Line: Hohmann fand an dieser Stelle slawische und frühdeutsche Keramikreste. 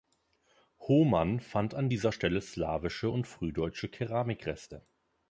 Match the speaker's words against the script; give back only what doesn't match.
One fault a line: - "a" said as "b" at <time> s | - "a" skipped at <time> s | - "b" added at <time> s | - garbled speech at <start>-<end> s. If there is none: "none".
none